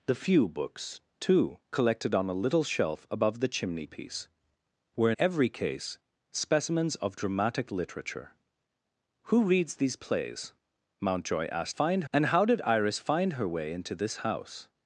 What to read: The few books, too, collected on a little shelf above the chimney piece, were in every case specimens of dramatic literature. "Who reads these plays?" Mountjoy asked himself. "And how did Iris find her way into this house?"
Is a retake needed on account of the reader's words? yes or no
yes